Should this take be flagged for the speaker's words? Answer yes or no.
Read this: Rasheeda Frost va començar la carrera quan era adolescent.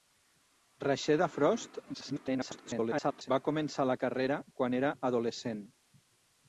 yes